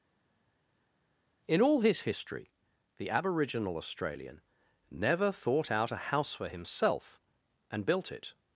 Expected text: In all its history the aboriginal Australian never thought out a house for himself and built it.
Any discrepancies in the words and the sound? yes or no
yes